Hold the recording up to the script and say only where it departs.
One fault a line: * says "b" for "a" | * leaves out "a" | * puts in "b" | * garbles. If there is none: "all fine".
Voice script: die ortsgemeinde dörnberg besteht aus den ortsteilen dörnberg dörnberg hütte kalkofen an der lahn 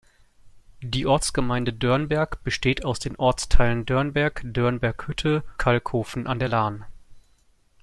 all fine